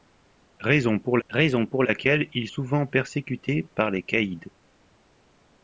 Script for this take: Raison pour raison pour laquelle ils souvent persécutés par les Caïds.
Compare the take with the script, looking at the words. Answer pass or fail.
pass